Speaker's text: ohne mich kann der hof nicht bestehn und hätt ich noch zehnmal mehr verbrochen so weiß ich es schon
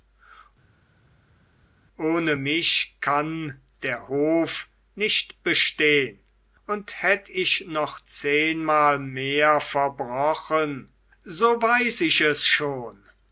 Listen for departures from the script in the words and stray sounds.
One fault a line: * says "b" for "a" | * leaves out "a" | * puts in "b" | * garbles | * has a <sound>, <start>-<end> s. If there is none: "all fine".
all fine